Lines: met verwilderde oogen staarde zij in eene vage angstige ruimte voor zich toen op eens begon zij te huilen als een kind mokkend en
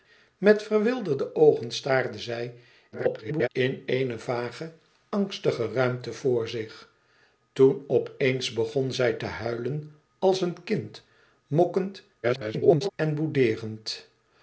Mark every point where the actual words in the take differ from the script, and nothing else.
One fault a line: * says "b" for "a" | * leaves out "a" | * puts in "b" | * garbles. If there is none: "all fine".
* garbles
* garbles